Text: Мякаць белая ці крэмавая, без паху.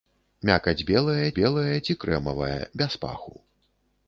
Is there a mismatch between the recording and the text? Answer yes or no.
yes